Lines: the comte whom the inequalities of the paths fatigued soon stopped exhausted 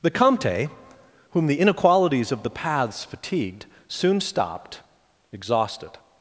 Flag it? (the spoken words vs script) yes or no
no